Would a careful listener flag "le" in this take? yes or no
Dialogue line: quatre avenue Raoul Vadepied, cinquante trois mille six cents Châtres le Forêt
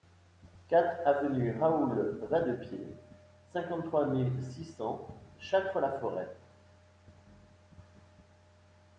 yes